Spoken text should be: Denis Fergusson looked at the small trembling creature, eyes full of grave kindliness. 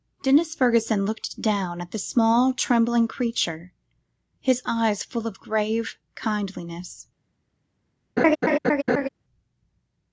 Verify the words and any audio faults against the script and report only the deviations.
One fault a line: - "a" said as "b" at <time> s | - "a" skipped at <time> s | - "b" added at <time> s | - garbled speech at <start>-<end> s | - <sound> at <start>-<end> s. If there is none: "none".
- "down" added at 1.4 s
- "his" added at 4.4 s
- laugh at 8.2-9.1 s